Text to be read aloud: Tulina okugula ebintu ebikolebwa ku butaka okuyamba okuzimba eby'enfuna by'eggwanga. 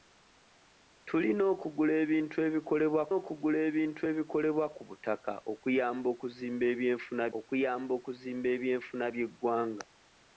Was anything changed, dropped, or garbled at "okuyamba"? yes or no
no